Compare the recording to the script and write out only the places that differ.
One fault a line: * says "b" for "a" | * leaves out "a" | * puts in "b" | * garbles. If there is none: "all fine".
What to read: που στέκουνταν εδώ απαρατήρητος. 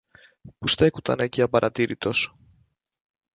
* says "εκεί" for "εδώ"